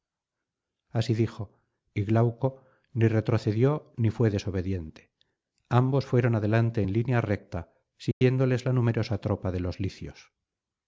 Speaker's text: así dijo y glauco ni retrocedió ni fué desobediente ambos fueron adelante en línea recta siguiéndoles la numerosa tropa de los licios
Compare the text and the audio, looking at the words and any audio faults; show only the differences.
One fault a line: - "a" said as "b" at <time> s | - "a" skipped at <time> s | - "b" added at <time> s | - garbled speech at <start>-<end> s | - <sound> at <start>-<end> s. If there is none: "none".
- dropout at 8.1-8.2 s